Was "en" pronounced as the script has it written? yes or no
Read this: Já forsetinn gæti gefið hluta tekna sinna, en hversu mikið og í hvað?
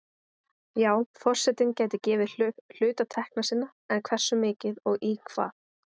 yes